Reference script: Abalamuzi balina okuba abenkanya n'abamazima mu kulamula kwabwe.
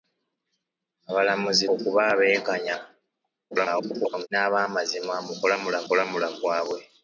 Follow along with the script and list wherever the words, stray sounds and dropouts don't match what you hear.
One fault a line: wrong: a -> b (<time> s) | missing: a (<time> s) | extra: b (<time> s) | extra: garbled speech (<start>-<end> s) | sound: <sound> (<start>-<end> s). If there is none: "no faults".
missing: balina (1.6 s)
extra: garbled speech (3.5-4.3 s)
extra: kulamula (5.9 s)